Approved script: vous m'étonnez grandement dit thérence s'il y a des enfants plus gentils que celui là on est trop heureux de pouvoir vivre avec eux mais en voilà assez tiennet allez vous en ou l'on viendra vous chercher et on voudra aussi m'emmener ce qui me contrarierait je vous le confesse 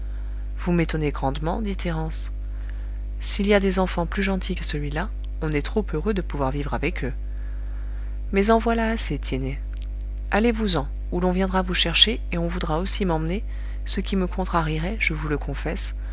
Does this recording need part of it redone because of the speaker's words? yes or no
no